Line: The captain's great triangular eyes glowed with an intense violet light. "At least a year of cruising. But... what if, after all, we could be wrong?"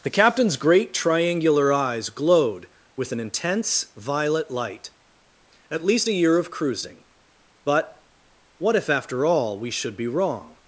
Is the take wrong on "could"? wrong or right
wrong